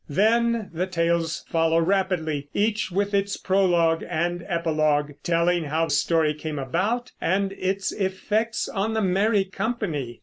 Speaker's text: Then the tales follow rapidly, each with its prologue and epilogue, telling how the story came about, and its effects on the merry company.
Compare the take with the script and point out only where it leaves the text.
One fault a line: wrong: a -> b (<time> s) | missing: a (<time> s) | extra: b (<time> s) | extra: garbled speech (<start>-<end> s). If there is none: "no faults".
missing: the (5.9 s)